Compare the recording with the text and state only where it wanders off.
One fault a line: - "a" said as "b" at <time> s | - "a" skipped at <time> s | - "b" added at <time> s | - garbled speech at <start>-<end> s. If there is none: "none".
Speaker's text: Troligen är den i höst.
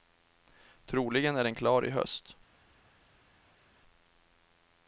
- "klar" added at 1.6 s